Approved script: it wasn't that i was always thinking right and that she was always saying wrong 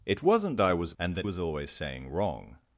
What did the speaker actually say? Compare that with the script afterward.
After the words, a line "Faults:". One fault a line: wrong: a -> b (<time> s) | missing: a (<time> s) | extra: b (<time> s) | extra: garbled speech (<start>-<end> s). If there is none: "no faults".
it wasn't i was and that was always saying wrong
Faults:
missing: that (0.6 s)
missing: always thinking right (1.0 s)
missing: she (1.3 s)